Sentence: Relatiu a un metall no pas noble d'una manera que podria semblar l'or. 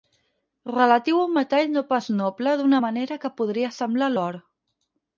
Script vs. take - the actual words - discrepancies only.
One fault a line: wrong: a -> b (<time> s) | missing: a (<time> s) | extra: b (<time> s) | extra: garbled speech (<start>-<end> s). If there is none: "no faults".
no faults